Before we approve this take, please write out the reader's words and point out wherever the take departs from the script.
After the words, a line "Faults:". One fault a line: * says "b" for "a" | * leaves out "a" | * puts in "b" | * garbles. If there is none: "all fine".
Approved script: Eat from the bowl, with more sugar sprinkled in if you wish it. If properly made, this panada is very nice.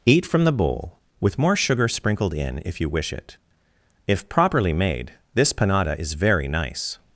Eat from the bowl, with more sugar sprinkled in if you wish it. If properly made, this panada is very nice.
Faults:
all fine